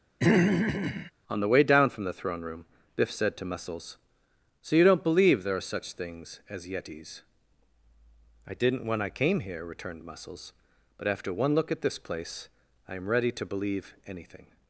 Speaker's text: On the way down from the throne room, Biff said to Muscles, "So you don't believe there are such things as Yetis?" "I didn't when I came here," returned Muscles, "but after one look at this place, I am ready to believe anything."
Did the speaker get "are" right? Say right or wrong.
right